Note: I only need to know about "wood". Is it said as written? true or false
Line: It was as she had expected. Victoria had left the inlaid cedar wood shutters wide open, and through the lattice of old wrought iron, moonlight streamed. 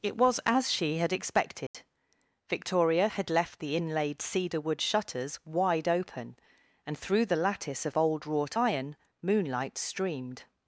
true